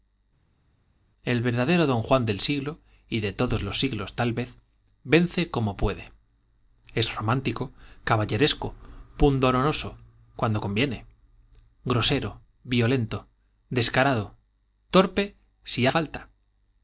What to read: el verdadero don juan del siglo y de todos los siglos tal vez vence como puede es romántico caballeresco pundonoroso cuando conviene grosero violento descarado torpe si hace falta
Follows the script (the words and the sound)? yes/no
no